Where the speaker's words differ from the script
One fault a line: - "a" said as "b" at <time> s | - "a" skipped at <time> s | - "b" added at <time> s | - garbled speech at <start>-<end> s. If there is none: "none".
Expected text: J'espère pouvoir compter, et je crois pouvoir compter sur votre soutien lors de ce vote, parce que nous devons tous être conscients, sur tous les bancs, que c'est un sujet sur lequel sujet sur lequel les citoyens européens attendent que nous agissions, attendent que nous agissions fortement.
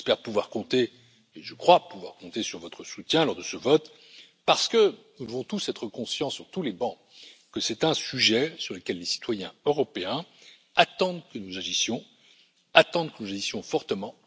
- "sujet sur lequel" skipped at 9.0 s